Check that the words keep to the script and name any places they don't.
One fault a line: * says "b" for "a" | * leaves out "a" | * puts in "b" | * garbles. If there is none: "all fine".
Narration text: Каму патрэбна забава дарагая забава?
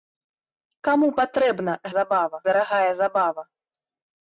all fine